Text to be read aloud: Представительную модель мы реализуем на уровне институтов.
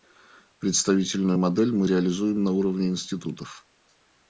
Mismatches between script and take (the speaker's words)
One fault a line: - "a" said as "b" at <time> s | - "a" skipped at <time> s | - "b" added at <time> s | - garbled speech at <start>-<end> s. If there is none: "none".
none